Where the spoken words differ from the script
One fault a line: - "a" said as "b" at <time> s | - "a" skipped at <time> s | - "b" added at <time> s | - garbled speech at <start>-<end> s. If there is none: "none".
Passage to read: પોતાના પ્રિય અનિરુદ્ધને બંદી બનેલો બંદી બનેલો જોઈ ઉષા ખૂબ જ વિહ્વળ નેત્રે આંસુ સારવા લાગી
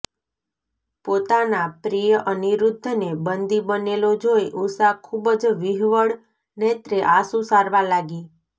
- "બંદી બનેલો" skipped at 4.1 s